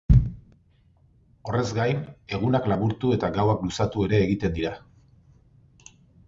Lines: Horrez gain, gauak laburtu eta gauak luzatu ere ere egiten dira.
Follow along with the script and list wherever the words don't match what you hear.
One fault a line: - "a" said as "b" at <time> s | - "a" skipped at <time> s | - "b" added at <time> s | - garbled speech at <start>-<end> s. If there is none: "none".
- "gauak" said as "egunak" at 2.4 s
- "ere" skipped at 4.2 s